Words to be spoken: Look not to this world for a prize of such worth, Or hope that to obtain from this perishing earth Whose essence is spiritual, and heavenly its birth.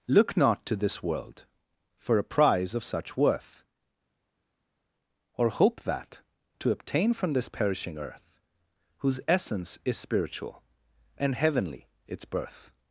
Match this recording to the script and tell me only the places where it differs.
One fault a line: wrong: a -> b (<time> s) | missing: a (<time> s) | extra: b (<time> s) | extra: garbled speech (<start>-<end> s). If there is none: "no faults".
no faults